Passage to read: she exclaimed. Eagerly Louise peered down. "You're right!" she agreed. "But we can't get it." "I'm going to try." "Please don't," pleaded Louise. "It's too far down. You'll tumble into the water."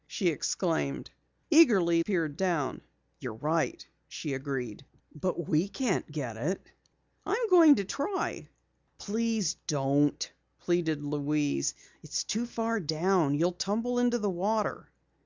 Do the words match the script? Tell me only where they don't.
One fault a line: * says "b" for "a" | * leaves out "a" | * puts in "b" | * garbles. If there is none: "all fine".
* leaves out "Louise"